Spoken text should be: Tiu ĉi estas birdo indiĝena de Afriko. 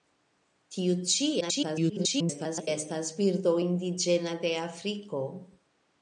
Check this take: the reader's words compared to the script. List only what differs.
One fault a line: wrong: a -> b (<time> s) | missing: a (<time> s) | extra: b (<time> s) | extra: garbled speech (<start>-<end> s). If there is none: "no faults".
extra: garbled speech (1.4-2.7 s)